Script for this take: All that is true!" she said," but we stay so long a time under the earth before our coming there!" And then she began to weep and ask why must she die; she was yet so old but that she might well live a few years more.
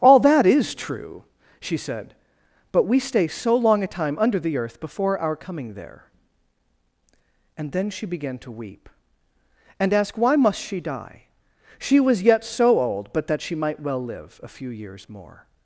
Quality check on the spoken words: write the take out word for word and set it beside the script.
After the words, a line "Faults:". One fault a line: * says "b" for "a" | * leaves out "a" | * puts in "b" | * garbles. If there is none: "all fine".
All that is true!" she said," but we stay so long a time under the earth before our coming there!" And then she began to weep and ask why must she die; she was yet so old but that she might well live a few years more.
Faults:
all fine